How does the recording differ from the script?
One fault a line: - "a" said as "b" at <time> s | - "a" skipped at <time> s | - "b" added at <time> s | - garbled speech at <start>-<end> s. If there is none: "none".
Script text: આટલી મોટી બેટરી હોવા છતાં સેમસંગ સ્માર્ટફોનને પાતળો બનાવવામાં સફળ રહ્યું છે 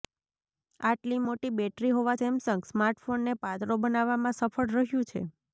- "છતાં" skipped at 2.2 s